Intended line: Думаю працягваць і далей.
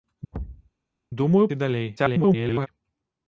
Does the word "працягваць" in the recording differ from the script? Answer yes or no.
yes